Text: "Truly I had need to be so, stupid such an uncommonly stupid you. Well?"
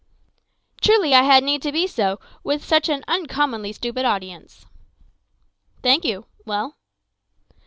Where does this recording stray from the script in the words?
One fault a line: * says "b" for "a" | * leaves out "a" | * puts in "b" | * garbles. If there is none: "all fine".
* says "with" for "stupid"
* puts in "audience Thank"